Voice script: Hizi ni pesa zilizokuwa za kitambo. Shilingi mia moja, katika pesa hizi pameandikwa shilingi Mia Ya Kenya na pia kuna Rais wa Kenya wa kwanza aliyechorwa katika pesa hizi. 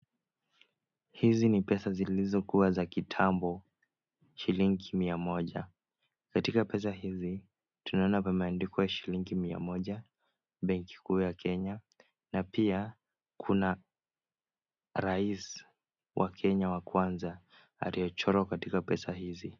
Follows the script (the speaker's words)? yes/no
no